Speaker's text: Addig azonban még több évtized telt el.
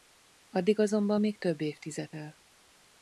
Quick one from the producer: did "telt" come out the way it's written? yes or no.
no